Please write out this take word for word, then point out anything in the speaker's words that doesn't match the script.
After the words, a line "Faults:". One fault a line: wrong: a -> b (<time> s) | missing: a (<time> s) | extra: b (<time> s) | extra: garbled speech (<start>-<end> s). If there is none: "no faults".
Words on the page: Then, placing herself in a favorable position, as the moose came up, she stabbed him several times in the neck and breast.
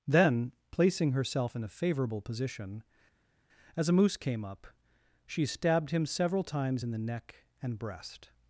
Then, placing herself in a favorable position, as a moose came up, she stabbed him several times in the neck and breast.
Faults:
wrong: the -> a (3.9 s)